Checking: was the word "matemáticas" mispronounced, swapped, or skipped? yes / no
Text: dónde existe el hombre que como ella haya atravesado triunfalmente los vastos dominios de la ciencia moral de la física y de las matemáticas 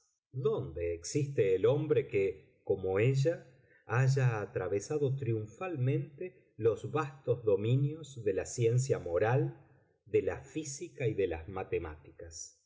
no